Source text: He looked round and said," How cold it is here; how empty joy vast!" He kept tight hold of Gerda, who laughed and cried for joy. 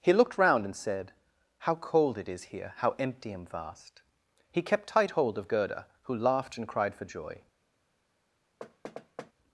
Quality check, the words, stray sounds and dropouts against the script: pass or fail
fail